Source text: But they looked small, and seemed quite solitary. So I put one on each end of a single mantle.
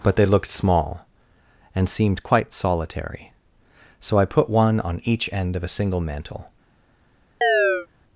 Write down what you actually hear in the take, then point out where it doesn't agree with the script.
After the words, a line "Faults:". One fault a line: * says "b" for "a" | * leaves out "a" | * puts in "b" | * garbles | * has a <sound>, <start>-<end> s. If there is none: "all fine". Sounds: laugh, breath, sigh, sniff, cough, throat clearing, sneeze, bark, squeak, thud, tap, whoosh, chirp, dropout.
But they looked small, and seemed quite solitary. So I put one on each end of a single mantle.
Faults:
* has a chirp, 7.4-7.9 s